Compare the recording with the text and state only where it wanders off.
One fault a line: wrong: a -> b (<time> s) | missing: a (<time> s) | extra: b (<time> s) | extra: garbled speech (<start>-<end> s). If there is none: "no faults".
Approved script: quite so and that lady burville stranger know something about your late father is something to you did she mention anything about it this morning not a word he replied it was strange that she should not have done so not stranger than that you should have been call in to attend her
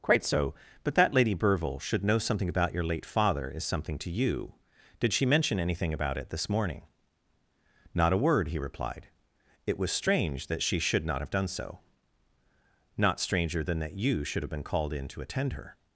wrong: and -> but (0.8 s)
wrong: stranger -> should (1.8 s)
wrong: call -> called (14.6 s)